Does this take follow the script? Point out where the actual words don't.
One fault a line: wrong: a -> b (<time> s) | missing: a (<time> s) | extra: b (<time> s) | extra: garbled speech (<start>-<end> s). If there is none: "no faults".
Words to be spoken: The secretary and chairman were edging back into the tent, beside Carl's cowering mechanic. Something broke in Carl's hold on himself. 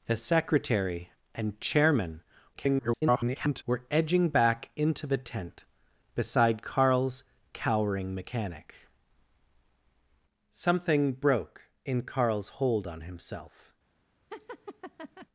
extra: garbled speech (2.5-3.6 s)